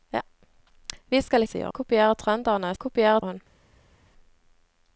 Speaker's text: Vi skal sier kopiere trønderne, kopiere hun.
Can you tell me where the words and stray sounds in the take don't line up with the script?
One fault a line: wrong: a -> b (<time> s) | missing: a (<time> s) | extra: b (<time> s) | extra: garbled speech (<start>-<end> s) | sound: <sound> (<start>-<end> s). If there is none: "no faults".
no faults